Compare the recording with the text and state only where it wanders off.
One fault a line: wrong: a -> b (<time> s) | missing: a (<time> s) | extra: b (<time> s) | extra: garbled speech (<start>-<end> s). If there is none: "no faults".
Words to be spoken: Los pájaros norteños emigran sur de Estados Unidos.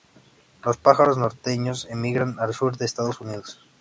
extra: al (2.4 s)